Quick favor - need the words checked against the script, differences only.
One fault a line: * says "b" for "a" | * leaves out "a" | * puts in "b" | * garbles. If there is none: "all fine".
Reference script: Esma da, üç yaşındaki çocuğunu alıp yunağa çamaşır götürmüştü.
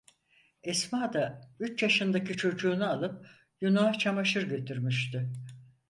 all fine